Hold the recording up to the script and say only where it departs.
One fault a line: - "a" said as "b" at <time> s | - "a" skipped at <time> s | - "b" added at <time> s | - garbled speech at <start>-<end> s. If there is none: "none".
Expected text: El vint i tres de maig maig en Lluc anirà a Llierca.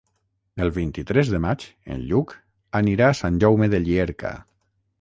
- "maig" skipped at 1.7 s
- "Sant Jaume de" added at 3.2 s